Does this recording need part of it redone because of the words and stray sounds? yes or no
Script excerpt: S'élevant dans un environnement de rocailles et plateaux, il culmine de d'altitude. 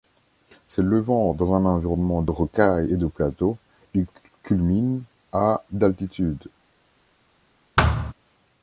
yes